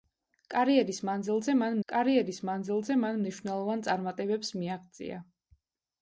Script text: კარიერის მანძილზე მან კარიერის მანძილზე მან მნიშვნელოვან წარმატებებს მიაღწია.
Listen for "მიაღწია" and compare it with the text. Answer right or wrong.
right